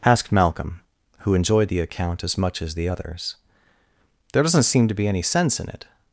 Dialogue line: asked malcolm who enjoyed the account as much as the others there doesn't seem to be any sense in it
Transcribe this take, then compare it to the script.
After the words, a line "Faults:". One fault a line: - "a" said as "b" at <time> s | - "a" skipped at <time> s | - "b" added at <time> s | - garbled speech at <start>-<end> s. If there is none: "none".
asked malcolm who enjoyed the account as much as the others there doesn't seem to be any sense in it
Faults:
none